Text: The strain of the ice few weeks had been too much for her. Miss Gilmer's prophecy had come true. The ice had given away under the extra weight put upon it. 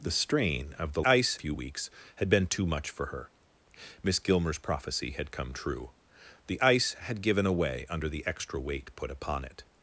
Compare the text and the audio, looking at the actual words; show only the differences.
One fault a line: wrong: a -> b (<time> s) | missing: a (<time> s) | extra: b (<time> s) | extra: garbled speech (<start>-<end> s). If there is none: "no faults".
no faults